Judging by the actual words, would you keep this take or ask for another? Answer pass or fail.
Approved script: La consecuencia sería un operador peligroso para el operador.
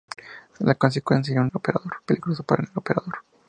pass